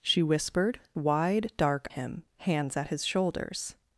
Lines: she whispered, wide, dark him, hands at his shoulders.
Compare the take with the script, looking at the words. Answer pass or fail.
pass